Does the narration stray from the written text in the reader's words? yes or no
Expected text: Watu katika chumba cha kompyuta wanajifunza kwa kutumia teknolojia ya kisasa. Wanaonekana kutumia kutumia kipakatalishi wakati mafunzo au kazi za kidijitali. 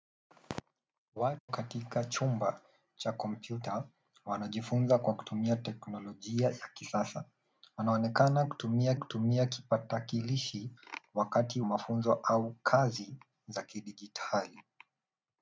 no